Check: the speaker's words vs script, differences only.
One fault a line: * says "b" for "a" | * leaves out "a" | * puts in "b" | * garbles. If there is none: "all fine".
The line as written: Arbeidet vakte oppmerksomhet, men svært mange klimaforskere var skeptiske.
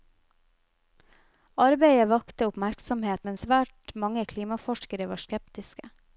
all fine